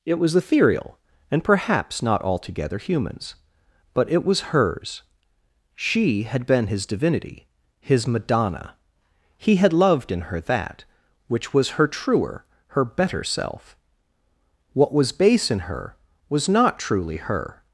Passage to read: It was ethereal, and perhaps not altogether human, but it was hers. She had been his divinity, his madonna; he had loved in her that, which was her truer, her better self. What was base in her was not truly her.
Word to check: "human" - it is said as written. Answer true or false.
false